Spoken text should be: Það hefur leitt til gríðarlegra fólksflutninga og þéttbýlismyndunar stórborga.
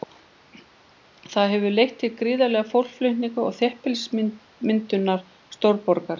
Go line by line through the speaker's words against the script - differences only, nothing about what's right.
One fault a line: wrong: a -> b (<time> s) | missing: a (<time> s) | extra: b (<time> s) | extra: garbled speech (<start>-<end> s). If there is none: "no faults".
no faults